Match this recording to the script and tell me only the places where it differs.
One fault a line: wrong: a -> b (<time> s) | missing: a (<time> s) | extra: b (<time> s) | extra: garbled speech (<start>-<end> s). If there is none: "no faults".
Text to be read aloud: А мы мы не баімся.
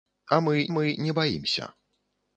no faults